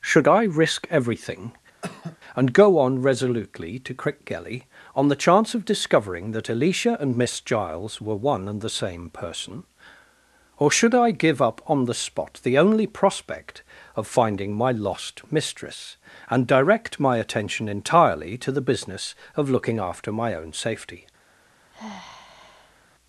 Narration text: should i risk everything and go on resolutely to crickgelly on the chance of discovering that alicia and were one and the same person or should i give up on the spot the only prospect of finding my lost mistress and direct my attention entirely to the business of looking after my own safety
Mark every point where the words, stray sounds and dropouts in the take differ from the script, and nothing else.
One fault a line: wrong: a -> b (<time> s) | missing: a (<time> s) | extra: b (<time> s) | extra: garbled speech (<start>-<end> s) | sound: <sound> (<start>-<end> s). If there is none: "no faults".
sound: cough (1.8-2.2 s)
extra: miss giles (7.2 s)
sound: sigh (21.7-22.9 s)